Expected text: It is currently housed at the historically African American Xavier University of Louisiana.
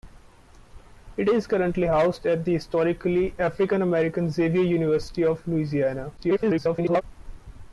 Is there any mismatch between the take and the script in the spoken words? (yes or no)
yes